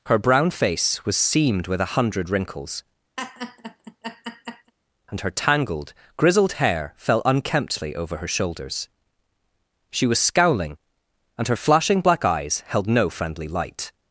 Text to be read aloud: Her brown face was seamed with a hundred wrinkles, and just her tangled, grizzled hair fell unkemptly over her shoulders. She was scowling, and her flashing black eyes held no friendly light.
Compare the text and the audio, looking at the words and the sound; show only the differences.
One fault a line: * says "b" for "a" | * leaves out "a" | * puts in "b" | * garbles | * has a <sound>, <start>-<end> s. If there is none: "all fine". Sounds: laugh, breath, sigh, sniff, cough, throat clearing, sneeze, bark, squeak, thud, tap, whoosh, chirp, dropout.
* has a laugh, 3.2-4.7 s
* leaves out "just"